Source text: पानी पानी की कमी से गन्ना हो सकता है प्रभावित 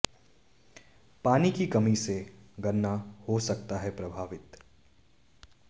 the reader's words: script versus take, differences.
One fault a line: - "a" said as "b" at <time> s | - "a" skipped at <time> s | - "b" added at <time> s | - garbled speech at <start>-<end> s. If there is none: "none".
- "पानी" skipped at 1.5 s